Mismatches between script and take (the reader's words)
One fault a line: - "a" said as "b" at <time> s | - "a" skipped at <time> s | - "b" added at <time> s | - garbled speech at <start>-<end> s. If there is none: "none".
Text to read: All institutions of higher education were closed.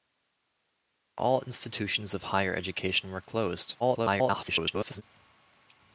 - garbled speech at 3.8-5.0 s